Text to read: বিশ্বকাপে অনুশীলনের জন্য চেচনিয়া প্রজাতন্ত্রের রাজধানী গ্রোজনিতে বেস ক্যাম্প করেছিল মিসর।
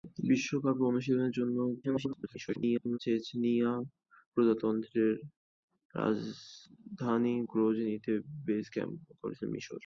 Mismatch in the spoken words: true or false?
true